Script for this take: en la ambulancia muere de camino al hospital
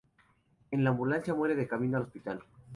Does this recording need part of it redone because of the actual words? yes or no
no